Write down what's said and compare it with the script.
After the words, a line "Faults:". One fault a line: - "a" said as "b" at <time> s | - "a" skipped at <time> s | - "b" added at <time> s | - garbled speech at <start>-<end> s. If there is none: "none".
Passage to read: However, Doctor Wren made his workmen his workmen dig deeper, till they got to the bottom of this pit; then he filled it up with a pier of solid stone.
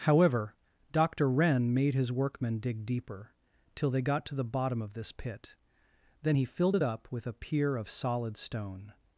However, Doctor Wren made his workmen dig deeper, till they got to the bottom of this pit; then he filled it up with a pier of solid stone.
Faults:
- "his workmen" skipped at 2.6 s